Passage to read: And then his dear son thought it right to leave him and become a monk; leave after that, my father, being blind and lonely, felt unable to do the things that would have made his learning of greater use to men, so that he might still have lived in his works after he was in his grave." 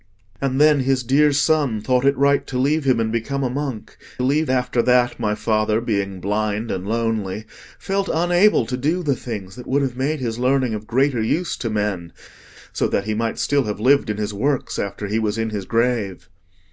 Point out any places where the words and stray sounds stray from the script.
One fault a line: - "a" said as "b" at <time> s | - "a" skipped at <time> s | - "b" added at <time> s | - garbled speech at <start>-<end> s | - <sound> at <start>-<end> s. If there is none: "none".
none